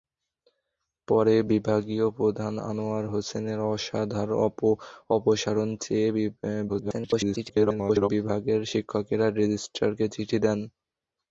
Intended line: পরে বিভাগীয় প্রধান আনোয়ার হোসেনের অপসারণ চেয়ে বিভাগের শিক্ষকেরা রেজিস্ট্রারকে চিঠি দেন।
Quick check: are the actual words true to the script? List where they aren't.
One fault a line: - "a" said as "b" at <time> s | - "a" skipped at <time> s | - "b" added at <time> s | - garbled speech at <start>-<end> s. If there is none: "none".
- garbled speech at 6.7-8.1 s